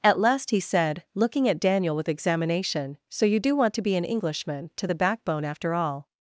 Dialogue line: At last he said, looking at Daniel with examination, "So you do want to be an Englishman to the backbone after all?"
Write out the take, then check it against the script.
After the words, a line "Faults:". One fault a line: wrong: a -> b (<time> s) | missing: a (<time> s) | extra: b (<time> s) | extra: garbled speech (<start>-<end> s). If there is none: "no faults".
At last he said, looking at Daniel with examination, "So you do want to be an Englishman to the backbone after all?"
Faults:
no faults